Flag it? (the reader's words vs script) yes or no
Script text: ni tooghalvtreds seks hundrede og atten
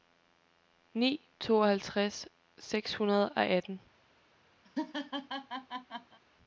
no